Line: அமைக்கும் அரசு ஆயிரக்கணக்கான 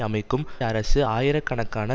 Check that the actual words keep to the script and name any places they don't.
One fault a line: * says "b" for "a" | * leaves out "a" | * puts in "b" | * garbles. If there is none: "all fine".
all fine